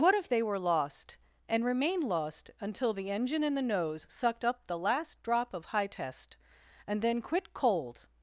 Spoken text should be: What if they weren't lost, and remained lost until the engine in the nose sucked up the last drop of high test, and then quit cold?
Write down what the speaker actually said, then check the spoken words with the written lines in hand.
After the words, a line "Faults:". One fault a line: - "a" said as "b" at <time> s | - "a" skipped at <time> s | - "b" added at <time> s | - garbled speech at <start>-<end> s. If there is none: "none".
What if they were lost, and remained lost until the engine in the nose sucked up the last drop of high test, and then quit cold?
Faults:
- "weren't" said as "were" at 0.4 s